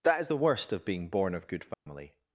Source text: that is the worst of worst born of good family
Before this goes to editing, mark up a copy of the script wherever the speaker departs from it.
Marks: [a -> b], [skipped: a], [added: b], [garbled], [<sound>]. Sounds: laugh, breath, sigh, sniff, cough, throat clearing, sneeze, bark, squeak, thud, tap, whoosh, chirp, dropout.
that is the worst of [worst -> being] born of good family [dropout]